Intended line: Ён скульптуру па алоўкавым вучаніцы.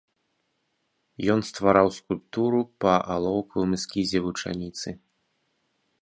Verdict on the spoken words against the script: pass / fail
fail